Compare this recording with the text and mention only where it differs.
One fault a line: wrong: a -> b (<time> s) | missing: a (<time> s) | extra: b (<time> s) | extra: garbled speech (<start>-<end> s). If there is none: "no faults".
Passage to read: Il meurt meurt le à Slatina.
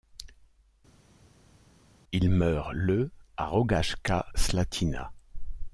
missing: meurt (2.7 s)
extra: Rogaška (3.4 s)